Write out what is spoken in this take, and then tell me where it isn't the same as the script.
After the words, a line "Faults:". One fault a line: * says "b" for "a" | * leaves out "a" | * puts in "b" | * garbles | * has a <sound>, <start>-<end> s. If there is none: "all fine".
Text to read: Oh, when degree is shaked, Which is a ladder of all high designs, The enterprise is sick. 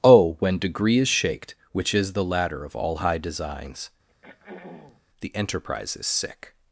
Oh, when degree is shaked, Which is the ladder of all high designs, The enterprise is sick.
Faults:
* says "the" for "a"
* has a throat clearing, 4.1-5.0 s